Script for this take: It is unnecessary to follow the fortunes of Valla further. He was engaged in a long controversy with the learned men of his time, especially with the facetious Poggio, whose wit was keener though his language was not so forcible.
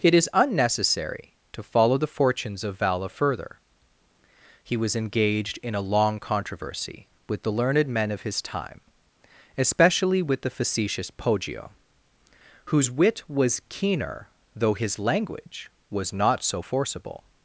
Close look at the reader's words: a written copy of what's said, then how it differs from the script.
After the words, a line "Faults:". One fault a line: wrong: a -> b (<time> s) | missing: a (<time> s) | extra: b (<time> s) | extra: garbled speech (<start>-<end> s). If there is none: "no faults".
It is unnecessary to follow the fortunes of Valla further. He was engaged in a long controversy with the learned men of his time, especially with the facetious Poggio, whose wit was keener though his language was not so forcible.
Faults:
no faults